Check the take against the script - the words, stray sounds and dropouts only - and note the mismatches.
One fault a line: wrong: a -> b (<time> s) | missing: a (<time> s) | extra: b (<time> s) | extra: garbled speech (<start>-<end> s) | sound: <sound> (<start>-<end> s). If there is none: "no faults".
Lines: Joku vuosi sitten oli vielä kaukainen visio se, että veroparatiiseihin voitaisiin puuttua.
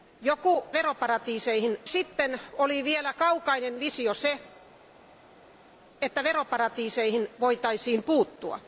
wrong: vuosi -> veroparatiiseihin (0.7 s)